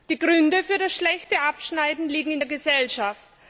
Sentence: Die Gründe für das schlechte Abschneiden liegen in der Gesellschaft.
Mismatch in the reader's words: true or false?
false